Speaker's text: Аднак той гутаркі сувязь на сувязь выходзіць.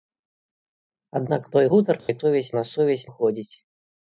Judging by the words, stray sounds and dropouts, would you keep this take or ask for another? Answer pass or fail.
fail